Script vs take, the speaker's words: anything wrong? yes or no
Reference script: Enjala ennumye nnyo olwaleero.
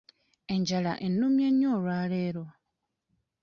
no